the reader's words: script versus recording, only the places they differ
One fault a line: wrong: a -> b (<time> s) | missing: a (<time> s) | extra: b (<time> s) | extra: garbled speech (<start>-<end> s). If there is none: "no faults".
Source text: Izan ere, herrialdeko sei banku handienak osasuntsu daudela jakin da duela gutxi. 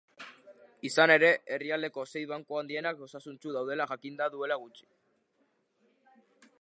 no faults